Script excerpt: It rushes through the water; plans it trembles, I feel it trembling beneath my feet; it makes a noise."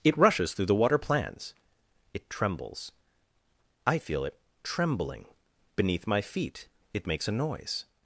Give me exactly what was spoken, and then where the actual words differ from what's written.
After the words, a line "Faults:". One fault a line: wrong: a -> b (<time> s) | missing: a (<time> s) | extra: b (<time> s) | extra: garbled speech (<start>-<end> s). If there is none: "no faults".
It rushes through the water; plans it trembles, I feel it trembling beneath my feet; it makes a noise."
Faults:
no faults